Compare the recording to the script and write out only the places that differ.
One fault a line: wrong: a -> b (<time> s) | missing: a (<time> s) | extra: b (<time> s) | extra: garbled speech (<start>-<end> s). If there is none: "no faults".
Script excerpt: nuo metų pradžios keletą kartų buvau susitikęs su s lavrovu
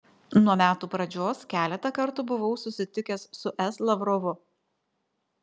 no faults